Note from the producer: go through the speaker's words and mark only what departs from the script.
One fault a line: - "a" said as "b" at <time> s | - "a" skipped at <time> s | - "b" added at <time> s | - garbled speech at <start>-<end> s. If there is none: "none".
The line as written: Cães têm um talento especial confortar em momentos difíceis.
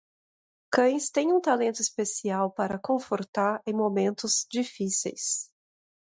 - "para" added at 2.5 s